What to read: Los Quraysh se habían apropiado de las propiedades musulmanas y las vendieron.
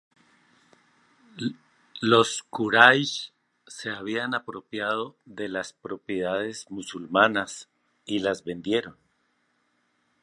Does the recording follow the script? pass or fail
pass